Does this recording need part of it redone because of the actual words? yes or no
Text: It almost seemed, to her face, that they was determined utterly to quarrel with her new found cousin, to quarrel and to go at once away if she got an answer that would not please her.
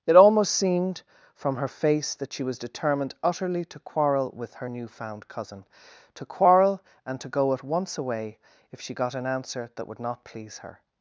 yes